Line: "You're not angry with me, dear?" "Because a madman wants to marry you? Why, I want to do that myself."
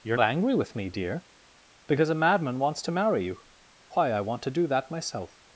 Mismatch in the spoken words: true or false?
true